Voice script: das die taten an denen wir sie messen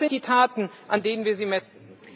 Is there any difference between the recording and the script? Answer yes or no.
no